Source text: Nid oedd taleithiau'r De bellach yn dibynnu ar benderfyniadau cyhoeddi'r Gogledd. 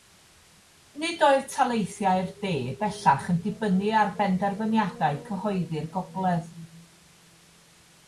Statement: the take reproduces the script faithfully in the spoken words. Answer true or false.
true